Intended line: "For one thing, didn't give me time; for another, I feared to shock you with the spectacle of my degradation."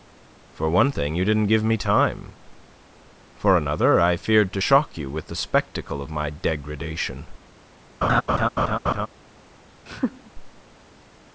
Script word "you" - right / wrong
right